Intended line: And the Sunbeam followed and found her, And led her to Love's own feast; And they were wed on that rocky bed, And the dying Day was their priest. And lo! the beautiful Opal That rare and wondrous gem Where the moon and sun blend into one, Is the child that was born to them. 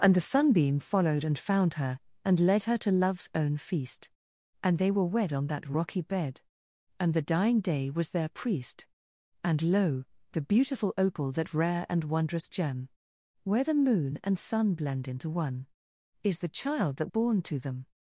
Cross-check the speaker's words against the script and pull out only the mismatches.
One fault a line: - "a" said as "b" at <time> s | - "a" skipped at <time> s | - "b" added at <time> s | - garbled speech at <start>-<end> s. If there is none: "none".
- "was" skipped at 17.1 s